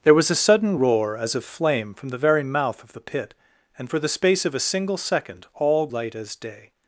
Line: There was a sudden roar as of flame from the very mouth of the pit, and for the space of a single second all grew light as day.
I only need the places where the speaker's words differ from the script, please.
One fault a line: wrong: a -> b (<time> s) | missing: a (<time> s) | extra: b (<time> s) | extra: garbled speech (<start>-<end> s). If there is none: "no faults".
missing: grew (5.9 s)